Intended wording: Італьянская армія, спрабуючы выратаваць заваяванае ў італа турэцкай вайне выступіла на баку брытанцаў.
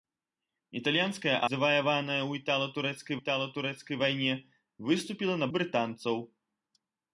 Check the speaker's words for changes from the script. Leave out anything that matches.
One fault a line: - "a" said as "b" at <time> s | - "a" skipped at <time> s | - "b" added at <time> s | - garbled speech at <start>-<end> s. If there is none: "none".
- "армія спрабуючы выратаваць" skipped at 1.3 s
- "італа турэцкай" added at 3.2 s
- "баку" skipped at 5.5 s